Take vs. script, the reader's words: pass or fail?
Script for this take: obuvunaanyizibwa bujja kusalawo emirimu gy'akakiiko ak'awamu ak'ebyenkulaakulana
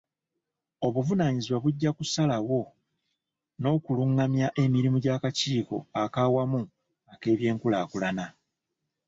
fail